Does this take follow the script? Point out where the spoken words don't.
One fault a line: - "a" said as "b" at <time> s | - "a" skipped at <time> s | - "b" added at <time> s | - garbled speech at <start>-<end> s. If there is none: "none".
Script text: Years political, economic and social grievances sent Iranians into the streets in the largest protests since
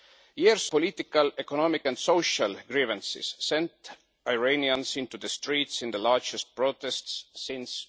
none